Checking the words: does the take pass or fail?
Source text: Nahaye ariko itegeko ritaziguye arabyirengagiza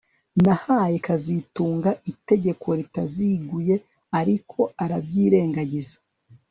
fail